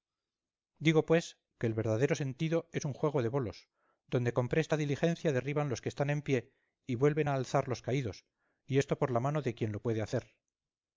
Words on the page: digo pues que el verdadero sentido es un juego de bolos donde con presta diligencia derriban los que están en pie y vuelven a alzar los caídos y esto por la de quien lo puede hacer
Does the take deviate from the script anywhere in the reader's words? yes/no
yes